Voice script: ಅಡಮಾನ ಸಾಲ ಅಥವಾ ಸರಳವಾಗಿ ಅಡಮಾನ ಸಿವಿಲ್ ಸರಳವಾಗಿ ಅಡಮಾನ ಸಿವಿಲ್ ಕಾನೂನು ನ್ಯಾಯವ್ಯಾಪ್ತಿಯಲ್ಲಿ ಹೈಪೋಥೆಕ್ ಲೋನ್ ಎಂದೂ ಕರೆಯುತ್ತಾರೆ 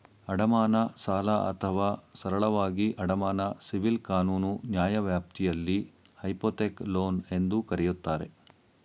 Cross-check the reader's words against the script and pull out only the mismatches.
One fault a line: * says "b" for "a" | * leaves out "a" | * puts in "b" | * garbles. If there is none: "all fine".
* leaves out "ಸರಳವಾಗಿ ಅಡಮಾನ ಸಿವಿಲ್"